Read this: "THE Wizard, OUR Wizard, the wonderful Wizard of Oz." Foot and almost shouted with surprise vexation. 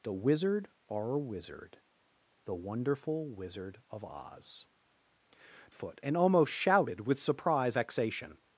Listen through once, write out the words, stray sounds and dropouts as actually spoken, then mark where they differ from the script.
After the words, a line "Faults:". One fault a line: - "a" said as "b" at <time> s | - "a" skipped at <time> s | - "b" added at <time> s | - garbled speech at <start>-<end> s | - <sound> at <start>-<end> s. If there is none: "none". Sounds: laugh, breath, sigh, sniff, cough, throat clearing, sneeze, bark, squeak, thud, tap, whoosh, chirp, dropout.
"THE Wizard, OUR Wizard, the wonderful Wizard of Oz." Foot and almost shouted with surprise vexation.
Faults:
none